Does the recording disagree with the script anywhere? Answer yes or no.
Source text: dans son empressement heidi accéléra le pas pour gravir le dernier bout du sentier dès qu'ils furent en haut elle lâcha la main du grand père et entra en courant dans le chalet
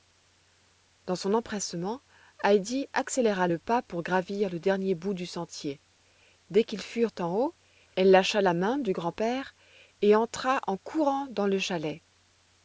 no